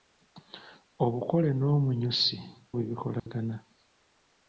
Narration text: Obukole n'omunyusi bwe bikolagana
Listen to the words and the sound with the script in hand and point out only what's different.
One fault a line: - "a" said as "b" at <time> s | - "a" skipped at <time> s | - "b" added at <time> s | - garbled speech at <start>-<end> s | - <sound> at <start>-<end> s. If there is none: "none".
- dropout at 3.2-3.3 s